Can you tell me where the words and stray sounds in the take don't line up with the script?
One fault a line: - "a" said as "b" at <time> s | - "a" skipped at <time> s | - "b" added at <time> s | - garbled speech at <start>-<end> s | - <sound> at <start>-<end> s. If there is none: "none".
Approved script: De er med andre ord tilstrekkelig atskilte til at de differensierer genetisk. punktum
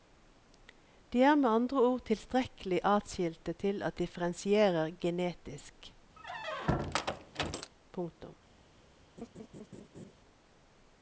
- "de" skipped at 4.0 s
- squeak at 6.2-7.7 s
- laugh at 9.2-10.1 s